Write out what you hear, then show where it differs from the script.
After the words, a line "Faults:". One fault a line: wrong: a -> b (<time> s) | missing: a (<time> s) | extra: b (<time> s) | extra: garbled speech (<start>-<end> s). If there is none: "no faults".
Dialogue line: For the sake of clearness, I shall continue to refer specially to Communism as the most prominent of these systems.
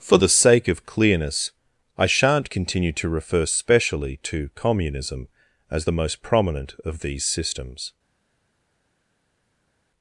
For the sake of clearness, I shan't continue to refer specially to Communism as the most prominent of these systems.
Faults:
wrong: shall -> shan't (2.1 s)